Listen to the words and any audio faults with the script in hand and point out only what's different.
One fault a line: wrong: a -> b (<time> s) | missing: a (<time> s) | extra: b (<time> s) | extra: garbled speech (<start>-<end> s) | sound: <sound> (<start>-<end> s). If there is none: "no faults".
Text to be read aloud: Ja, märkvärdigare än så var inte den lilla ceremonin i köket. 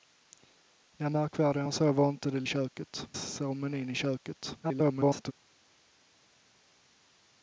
wrong: lilla -> köket (2.4 s)
extra: garbled speech (4.6-5.3 s)